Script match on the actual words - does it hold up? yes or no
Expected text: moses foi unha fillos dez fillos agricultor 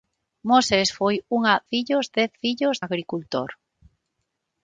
yes